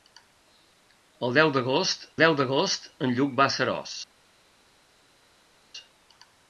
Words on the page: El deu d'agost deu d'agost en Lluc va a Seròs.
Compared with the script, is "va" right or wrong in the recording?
right